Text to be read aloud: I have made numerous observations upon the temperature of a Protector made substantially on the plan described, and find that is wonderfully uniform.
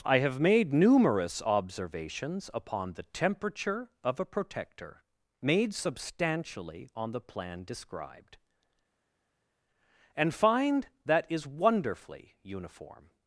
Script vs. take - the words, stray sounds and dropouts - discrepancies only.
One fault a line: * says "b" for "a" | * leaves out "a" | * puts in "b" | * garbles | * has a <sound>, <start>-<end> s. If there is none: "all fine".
all fine